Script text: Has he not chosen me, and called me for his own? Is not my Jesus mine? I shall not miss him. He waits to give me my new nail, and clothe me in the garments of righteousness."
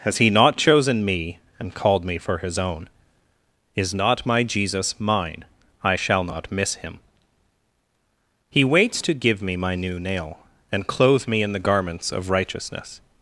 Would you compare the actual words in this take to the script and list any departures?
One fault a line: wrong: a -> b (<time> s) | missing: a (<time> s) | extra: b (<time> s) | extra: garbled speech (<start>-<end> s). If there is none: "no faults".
no faults